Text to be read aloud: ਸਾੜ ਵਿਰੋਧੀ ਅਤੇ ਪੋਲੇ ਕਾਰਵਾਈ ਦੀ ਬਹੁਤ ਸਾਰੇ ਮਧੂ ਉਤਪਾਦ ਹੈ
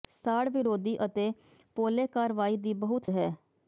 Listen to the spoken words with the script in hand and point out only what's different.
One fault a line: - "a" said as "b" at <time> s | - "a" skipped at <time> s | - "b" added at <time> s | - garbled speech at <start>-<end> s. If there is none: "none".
- "ਸਾਰੇ ਮਧੂ ਉਤਪਾਦ" skipped at 3.1 s